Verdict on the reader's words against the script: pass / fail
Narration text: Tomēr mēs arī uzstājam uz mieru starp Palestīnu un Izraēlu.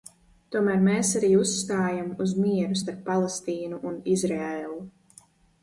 pass